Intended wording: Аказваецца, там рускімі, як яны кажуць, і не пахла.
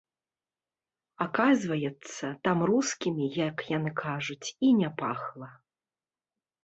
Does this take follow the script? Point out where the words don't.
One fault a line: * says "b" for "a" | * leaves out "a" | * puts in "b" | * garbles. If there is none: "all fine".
all fine